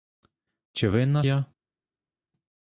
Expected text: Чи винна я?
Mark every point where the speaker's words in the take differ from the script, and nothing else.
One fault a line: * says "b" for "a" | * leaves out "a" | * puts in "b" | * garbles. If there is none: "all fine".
all fine